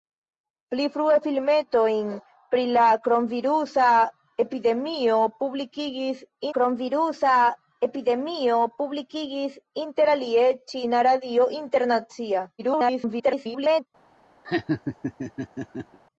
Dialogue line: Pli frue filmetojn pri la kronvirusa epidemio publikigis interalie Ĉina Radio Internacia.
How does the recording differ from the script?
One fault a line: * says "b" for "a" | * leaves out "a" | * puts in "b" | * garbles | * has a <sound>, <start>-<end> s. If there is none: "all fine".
* puts in "kronvirusa epidemio publikigis"
* garbles
* has a laugh, 14.4-16.0 s